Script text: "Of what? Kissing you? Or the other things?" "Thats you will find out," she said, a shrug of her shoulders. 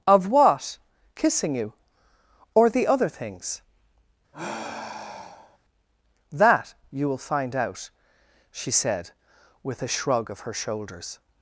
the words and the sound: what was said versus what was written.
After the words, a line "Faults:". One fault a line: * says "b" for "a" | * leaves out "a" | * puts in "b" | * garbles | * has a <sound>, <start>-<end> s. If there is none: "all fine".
"Of what? Kissing you? Or the other things?" "That you will find out," she said, with a shrug of her shoulders.
Faults:
* has a sigh, 4.3-5.6 s
* says "That" for "Thats"
* puts in "with"